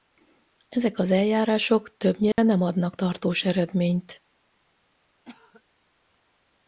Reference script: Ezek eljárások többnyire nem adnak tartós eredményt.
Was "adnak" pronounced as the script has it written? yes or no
yes